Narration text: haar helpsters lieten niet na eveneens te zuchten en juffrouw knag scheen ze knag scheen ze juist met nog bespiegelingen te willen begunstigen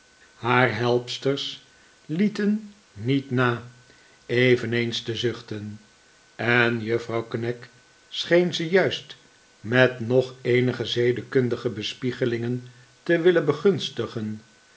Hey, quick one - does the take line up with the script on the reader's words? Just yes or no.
no